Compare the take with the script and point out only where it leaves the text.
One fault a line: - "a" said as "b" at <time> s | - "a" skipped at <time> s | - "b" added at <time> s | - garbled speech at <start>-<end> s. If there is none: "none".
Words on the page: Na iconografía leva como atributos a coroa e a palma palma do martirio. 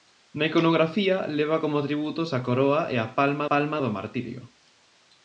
none